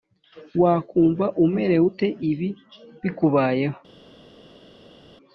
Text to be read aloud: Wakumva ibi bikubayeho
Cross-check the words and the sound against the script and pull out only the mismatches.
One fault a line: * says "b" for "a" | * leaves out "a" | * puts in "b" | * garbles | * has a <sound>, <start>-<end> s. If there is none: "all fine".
* puts in "umerewe ute"